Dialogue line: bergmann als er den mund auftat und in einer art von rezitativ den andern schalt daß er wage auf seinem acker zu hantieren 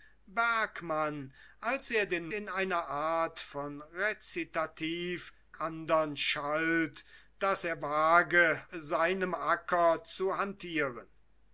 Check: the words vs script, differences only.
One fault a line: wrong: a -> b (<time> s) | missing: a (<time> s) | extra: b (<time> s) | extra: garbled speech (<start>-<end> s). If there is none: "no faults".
missing: mund auftat und (2.3 s)
missing: den (5.3 s)
missing: auf (8.7 s)